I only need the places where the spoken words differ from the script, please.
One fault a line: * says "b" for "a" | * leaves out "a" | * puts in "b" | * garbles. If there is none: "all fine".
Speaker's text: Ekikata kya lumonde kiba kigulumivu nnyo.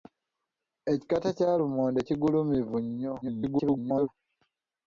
* leaves out "kiba"
* garbles